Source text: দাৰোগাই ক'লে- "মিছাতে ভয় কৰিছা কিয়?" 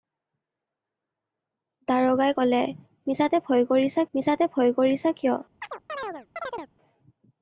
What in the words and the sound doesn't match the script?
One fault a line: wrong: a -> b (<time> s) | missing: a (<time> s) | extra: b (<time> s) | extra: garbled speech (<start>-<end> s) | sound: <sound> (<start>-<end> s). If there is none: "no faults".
extra: মিছাতে ভয় কৰিছা (4.1 s)
sound: chirp (5.6-6.7 s)